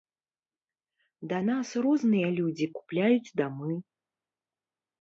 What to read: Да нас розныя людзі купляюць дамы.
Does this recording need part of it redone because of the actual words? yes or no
no